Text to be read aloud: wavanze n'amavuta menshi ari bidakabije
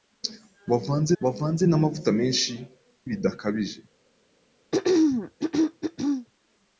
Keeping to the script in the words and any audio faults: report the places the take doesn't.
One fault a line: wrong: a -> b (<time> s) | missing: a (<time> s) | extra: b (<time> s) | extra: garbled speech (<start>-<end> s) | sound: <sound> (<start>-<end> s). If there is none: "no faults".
extra: wavanze (1.2 s)
missing: ari (2.5 s)
sound: throat clearing (4.7-6.3 s)